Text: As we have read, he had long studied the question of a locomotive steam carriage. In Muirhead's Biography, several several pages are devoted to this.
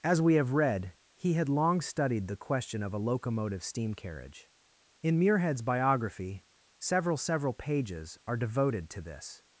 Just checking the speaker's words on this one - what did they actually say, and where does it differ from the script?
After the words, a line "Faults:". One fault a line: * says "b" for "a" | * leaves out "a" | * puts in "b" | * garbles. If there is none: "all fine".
As we have read, he had long studied the question of a locomotive steam carriage. In Muirhead's Biography, several several pages are devoted to this.
Faults:
all fine